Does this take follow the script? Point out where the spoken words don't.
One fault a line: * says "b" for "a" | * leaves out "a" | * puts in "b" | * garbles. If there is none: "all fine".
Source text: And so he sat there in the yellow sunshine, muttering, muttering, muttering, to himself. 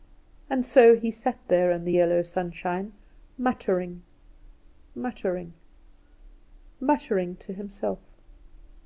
all fine